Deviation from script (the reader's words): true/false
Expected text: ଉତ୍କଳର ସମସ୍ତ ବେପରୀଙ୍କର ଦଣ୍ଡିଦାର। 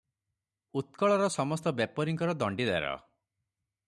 false